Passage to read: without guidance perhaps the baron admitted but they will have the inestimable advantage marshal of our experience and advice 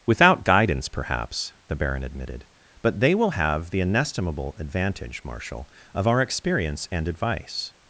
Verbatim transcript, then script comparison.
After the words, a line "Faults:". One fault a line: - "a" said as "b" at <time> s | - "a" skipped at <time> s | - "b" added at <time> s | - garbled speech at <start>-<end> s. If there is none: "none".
without guidance perhaps the baron admitted but they will have the inestimable advantage marshal of our experience and advice
Faults:
none